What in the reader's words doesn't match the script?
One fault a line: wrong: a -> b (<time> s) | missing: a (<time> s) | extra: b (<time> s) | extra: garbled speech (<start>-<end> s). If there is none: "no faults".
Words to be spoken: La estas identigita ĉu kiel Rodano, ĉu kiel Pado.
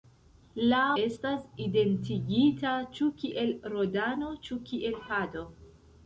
no faults